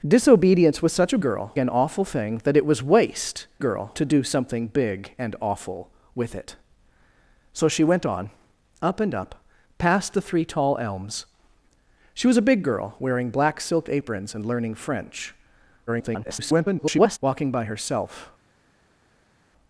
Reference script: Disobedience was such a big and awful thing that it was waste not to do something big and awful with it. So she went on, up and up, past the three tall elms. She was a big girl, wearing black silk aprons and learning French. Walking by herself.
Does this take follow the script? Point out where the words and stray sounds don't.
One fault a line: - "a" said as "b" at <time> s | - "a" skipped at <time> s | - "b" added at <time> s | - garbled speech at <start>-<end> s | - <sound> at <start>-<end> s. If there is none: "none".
- "big" said as "girl" at 1.2 s
- "not" said as "girl" at 3.6 s
- garbled speech at 15.9-17.2 s